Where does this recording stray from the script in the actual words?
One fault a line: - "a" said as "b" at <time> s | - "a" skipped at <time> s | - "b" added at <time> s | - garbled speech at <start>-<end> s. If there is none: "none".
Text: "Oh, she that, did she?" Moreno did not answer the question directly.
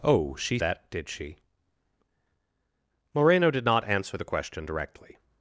none